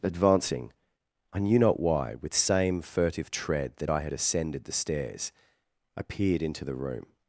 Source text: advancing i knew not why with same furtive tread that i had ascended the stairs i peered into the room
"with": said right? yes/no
yes